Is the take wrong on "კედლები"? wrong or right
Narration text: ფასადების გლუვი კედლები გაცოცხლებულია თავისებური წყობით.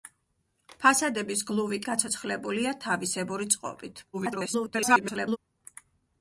wrong